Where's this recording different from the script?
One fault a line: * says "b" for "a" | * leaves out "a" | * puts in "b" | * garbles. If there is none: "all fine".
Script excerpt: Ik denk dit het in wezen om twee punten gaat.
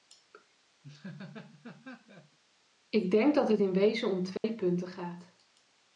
* says "dat" for "dit"